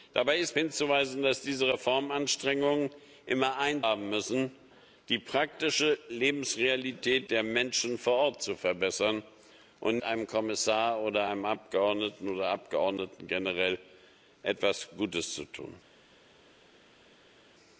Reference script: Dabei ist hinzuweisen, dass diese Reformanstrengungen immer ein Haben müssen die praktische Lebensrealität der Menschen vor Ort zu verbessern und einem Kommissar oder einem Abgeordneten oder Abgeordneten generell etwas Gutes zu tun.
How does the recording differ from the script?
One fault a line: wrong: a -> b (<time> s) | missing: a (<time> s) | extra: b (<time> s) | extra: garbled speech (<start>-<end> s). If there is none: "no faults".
no faults